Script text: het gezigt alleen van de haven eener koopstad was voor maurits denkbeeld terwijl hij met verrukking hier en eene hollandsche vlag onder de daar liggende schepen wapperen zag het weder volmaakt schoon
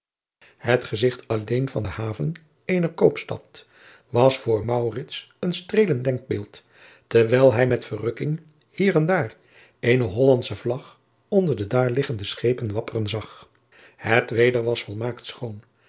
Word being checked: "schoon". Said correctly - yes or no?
yes